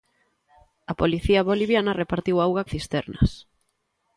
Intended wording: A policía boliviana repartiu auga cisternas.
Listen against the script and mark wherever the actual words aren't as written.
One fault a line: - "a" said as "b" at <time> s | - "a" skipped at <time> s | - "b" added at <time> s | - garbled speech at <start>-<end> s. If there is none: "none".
none